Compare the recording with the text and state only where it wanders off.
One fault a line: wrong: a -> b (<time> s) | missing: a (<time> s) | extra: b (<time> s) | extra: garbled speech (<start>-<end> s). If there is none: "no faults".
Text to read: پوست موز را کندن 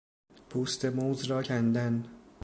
no faults